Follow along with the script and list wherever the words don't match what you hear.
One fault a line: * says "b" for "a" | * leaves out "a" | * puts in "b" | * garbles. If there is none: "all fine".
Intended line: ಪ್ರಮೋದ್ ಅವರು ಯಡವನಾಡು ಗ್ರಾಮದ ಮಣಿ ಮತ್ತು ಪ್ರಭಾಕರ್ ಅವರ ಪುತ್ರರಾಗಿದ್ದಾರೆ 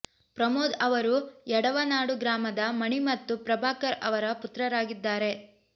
all fine